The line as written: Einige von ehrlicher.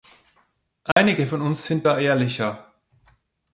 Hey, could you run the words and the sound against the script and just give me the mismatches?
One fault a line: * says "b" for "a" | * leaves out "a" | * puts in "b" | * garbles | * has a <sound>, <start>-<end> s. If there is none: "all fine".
* has a dropout, 0.9-1.0 s
* puts in "uns sind da"